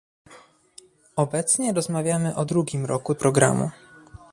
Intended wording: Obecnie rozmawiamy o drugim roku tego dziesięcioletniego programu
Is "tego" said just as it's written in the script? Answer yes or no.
no